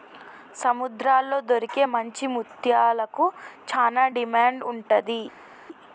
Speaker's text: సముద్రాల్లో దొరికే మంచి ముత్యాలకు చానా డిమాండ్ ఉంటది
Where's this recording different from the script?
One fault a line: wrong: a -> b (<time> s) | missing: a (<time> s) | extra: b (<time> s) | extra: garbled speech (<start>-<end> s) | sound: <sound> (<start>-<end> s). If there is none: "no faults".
no faults